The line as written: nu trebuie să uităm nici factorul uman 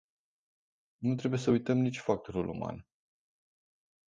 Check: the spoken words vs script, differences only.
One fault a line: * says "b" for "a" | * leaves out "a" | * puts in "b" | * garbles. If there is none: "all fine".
all fine